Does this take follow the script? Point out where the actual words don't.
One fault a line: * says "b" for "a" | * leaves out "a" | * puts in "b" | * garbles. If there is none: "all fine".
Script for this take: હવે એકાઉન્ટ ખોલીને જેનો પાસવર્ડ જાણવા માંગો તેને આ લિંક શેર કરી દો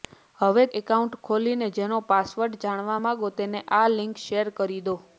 all fine